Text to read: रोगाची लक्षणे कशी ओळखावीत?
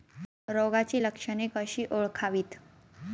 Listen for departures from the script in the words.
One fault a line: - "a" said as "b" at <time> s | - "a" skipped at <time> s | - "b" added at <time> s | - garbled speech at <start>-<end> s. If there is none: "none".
none